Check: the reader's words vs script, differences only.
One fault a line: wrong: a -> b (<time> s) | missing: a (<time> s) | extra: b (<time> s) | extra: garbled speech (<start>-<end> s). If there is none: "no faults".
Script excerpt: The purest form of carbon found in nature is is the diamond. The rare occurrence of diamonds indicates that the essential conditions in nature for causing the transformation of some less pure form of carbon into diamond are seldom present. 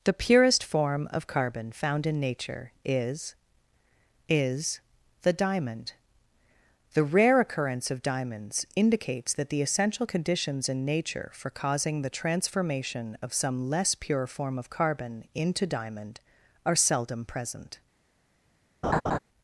no faults